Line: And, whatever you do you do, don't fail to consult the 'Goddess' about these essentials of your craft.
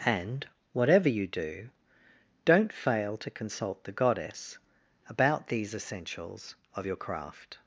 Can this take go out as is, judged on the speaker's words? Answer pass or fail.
fail